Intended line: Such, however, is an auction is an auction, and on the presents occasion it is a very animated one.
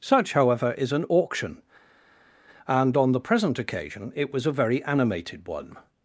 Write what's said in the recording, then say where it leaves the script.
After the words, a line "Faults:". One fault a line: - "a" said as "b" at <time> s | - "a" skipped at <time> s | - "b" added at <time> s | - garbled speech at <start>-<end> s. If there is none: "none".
Such, however, is an auction, and on the present occasion it was a very animated one.
Faults:
- "is an auction" skipped at 1.6 s
- "presents" said as "present" at 3.2 s
- "is" said as "was" at 4.3 s